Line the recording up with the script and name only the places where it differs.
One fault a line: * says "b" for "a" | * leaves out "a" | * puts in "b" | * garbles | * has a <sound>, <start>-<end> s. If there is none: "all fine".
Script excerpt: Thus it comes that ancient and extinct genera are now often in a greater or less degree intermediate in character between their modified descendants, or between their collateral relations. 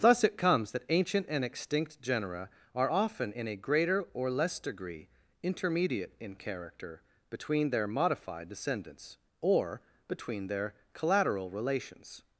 * leaves out "now"